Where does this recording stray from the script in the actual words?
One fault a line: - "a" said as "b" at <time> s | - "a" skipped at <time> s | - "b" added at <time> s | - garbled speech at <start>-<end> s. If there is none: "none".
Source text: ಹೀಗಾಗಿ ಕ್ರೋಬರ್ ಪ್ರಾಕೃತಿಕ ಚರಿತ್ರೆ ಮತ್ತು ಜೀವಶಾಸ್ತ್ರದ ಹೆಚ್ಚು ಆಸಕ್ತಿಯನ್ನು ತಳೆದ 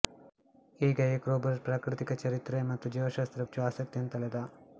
none